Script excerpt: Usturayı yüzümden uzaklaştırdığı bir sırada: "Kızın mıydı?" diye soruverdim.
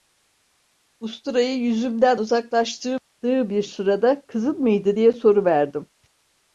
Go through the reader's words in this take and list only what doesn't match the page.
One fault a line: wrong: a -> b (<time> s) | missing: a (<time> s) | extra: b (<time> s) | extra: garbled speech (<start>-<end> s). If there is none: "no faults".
no faults